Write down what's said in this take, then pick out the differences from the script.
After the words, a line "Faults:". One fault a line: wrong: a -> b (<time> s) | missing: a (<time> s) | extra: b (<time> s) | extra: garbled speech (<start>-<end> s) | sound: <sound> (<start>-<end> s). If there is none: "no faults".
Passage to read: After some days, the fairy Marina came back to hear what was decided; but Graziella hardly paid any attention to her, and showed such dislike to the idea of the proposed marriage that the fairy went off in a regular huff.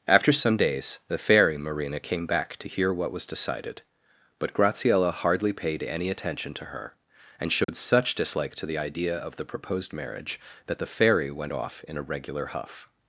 After some days, the fairy Marina came back to hear what was decided; but Graziella hardly paid any attention to her, and showed such dislike to the idea of the proposed marriage that the fairy went off in a regular huff.
Faults:
sound: dropout (7.6-7.7 s)